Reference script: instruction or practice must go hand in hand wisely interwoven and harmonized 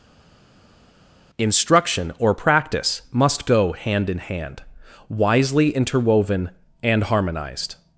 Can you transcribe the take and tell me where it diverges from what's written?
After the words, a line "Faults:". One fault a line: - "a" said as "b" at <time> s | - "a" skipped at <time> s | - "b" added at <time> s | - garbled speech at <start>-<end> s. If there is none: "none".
instruction or practice must go hand in hand wisely interwoven and harmonized
Faults:
none